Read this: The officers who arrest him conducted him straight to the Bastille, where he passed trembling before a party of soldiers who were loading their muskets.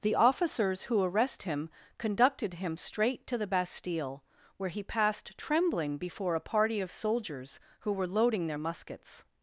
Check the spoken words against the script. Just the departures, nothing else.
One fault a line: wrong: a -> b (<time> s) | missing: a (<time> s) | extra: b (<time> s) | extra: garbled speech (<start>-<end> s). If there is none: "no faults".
no faults